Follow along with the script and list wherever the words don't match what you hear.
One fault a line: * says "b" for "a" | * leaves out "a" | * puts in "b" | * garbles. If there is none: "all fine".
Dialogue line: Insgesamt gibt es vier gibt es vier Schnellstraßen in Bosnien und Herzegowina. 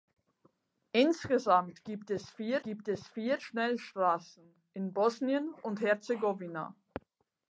all fine